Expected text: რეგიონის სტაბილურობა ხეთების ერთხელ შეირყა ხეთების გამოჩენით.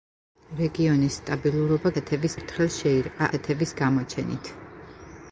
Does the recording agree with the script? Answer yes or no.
yes